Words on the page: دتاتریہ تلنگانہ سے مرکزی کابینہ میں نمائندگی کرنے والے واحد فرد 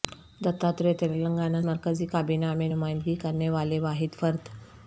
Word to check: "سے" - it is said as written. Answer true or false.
false